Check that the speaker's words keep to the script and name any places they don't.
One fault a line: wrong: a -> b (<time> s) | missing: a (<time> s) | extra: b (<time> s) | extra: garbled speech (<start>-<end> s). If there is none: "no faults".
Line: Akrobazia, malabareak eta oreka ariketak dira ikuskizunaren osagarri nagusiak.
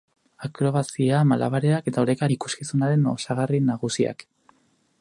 missing: ariketak dira (2.2 s)